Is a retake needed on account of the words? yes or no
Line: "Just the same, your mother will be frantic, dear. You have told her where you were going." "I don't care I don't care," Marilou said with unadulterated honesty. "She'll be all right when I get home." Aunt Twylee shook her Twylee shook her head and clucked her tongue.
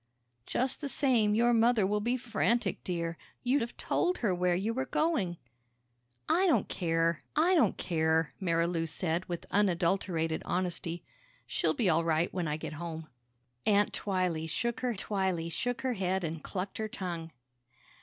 no